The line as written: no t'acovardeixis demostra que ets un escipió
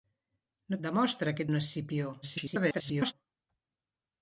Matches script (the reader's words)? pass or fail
fail